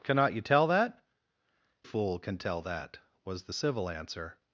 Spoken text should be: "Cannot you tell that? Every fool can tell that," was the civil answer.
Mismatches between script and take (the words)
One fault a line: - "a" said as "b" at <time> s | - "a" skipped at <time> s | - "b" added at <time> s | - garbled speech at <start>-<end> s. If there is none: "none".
- "Every" skipped at 1.0 s